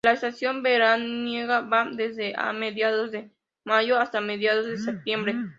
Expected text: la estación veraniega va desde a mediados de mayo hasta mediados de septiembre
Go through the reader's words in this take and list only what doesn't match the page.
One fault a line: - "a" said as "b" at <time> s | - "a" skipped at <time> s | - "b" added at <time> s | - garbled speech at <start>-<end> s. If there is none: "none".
none